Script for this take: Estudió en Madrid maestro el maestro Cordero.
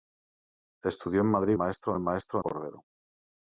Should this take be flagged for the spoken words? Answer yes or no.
no